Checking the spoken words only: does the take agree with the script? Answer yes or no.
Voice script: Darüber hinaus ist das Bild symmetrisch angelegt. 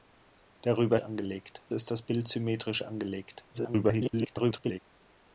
no